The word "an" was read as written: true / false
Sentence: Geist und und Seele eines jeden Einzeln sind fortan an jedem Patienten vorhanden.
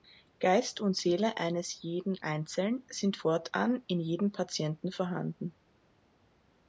false